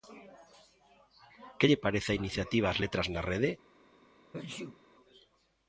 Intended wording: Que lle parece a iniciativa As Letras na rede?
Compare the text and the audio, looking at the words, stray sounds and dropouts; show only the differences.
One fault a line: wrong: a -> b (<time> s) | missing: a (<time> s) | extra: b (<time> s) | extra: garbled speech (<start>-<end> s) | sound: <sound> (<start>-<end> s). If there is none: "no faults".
sound: sneeze (4.3-4.8 s)